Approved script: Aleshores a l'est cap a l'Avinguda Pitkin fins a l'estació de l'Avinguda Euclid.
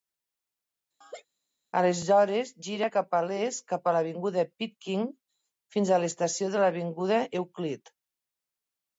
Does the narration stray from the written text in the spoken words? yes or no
yes